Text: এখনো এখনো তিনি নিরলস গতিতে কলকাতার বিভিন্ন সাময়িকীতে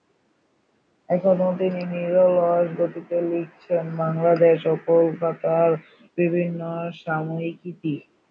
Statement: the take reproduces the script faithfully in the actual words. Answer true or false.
false